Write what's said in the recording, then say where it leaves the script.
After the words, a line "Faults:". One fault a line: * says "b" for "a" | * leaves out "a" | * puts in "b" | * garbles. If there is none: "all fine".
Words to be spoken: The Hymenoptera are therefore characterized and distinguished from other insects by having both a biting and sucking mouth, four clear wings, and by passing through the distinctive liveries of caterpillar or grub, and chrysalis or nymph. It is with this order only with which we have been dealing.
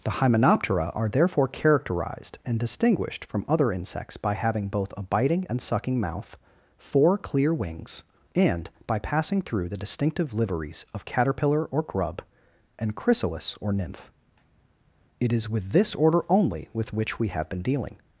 The Hymenoptera are therefore characterized and distinguished from other insects by having both a biting and sucking mouth, four clear wings, and by passing through the distinctive liveries of caterpillar or grub, and chrysalis or nymph. It is with this order only with which we have been dealing.
Faults:
all fine